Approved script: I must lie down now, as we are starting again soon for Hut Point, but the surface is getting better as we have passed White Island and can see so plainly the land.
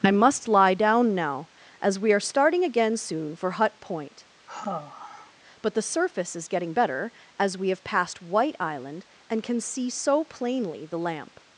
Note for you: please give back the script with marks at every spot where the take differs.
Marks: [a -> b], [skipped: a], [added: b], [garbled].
I must lie down now, as we are starting again soon for Hut Point, but the surface is getting better as we have passed White Island and can see so plainly the [land. -> lamp]